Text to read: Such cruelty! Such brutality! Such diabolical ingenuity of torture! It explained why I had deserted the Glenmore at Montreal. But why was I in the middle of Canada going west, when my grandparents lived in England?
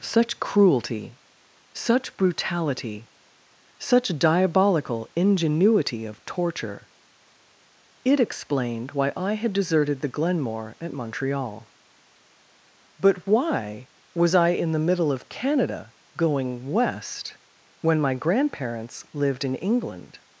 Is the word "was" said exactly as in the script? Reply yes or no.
yes